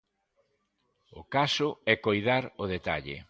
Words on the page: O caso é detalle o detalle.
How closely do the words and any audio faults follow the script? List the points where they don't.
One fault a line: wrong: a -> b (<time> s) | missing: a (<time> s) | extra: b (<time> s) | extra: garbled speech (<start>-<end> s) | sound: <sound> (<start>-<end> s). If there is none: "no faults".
wrong: detalle -> coidar (2.0 s)